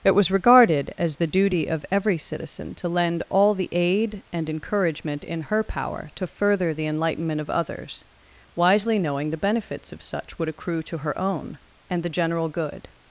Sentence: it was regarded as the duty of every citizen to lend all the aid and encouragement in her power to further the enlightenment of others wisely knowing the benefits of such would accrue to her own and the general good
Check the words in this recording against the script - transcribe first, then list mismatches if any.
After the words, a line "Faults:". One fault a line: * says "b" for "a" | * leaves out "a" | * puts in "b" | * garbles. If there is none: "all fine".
it was regarded as the duty of every citizen to lend all the aid and encouragement in her power to further the enlightenment of others wisely knowing the benefits of such would accrue to her own and the general good
Faults:
all fine